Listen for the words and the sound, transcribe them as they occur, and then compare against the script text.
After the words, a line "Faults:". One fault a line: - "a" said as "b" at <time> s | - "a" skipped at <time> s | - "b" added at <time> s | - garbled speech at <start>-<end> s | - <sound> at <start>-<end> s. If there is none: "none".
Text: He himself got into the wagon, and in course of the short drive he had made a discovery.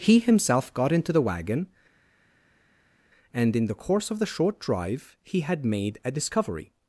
He himself got into the wagon, and in the course of the short drive he had made a discovery.
Faults:
- "the" added at 3.6 s